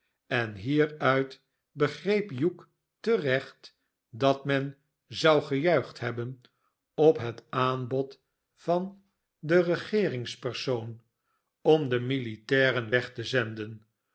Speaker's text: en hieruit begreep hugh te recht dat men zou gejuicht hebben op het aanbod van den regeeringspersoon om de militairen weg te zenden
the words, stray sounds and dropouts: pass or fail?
pass